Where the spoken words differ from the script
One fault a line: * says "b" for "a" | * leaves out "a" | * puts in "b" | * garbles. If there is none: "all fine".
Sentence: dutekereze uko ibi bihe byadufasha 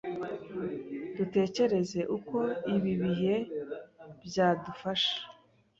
all fine